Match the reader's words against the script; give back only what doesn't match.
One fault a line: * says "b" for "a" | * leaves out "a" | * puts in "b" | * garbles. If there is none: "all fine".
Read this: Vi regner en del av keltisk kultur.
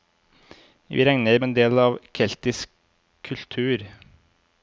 all fine